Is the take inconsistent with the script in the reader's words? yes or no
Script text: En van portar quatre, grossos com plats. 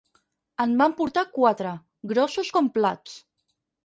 no